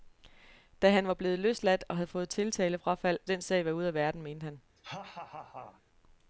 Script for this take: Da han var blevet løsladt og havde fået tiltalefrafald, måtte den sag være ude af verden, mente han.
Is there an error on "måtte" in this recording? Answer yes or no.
yes